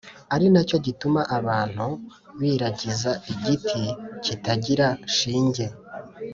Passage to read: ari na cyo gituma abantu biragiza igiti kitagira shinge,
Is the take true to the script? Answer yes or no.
yes